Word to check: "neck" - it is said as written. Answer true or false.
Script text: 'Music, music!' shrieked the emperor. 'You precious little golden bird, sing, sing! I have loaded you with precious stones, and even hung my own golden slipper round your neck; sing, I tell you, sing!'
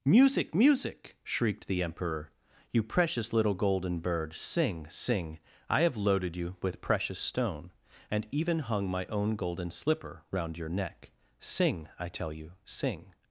true